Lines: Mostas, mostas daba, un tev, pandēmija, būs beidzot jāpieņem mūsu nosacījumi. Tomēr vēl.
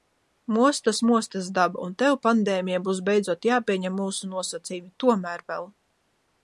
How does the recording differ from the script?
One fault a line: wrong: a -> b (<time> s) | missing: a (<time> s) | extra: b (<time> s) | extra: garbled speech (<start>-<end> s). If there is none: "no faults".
no faults